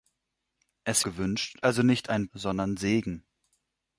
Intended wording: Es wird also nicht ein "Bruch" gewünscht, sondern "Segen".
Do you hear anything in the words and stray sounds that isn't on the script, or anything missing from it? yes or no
yes